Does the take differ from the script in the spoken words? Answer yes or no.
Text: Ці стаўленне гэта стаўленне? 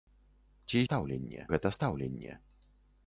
no